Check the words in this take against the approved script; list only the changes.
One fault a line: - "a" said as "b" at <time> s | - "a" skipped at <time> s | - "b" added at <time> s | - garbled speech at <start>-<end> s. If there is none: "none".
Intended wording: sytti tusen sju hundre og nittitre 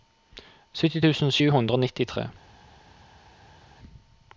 none